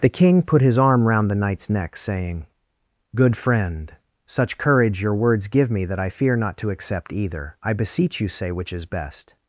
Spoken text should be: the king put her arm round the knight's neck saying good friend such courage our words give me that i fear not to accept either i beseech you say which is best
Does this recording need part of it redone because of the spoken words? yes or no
yes